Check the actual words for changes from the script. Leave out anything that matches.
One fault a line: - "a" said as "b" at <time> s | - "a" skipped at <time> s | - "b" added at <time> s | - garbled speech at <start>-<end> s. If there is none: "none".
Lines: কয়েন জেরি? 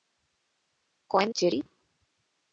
none